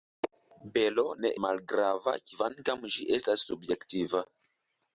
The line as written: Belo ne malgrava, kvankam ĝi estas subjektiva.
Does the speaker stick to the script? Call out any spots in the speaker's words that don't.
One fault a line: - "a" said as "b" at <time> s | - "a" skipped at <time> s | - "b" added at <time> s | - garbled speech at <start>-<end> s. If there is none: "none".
none